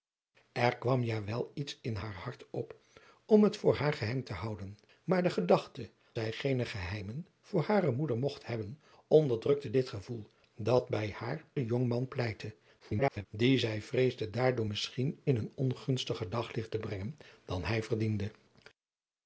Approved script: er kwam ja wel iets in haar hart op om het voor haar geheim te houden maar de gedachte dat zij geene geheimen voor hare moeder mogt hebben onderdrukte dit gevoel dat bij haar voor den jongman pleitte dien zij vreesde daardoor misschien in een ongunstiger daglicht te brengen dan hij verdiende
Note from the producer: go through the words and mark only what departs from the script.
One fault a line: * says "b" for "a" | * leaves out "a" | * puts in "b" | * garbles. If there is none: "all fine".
* leaves out "dat"
* leaves out "voor"
* garbles